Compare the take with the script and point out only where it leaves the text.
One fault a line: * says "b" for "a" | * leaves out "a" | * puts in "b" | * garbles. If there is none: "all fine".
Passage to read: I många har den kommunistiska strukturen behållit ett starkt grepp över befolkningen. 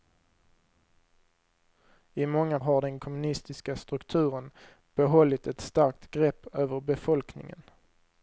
all fine